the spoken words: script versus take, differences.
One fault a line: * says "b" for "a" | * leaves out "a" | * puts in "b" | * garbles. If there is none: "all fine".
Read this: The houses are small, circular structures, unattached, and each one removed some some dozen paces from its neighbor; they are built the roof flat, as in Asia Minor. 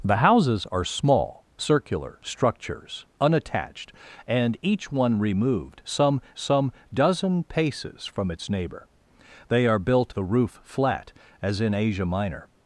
all fine